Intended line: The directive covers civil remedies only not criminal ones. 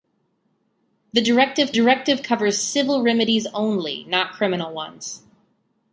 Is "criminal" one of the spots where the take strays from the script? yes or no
no